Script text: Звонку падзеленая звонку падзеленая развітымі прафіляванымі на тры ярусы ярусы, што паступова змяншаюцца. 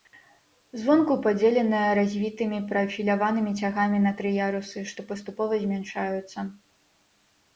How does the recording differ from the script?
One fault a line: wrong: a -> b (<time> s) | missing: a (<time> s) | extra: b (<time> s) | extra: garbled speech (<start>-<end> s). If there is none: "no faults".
missing: звонку падзеленая (1.9 s)
extra: цягамі (3.6 s)
missing: ярусы (4.8 s)